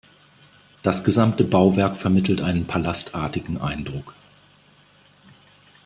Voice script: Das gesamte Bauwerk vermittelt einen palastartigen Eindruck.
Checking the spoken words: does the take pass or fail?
pass